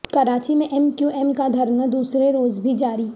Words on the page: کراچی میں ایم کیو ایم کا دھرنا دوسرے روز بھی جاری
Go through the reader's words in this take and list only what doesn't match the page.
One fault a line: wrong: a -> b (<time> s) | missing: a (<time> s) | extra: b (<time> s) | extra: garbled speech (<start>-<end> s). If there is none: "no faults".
no faults